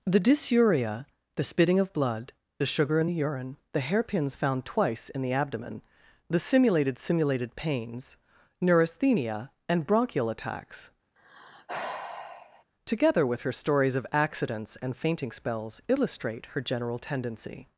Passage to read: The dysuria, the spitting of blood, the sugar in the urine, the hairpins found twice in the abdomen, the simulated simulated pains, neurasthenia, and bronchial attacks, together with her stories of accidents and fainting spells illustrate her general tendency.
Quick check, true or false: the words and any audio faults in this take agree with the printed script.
false